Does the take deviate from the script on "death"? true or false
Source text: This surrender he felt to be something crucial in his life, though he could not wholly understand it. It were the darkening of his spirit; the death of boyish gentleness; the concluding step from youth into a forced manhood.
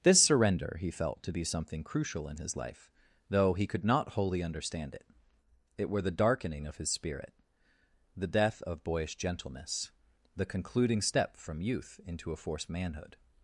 false